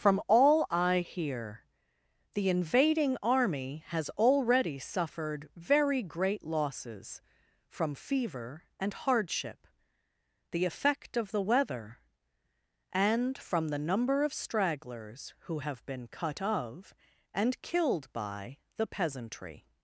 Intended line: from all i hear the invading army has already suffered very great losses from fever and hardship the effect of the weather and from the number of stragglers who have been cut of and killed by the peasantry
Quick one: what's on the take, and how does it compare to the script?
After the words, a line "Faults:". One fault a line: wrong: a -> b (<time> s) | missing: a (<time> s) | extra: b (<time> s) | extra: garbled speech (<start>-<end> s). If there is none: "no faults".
from all i hear the invading army has already suffered very great losses from fever and hardship the effect of the weather and from the number of stragglers who have been cut of and killed by the peasantry
Faults:
no faults